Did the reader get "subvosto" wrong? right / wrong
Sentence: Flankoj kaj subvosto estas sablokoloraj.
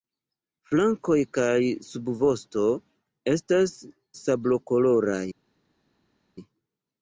right